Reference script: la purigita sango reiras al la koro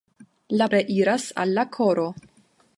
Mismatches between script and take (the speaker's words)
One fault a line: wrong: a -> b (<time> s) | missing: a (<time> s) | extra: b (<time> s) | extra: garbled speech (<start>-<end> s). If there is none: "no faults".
missing: purigita sango (0.7 s)